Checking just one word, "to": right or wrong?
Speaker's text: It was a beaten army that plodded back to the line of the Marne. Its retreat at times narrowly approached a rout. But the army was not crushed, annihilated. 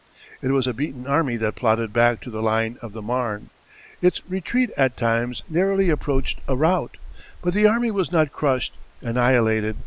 right